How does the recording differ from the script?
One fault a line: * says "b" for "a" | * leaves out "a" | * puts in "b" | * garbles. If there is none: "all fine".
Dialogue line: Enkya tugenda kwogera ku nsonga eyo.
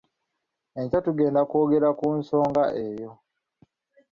all fine